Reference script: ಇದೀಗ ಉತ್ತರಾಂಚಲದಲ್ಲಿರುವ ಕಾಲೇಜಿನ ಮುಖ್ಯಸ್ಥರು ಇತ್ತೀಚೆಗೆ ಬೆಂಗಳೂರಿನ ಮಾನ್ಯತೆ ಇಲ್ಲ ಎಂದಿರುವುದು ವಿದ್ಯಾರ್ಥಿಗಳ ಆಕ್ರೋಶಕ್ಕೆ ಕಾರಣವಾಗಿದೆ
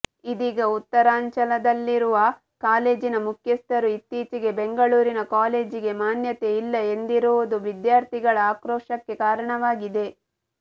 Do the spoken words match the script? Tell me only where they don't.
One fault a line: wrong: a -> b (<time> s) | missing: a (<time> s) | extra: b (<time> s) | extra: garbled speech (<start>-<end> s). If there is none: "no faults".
extra: ಕಾಲೇಜಿಗೆ (5.3 s)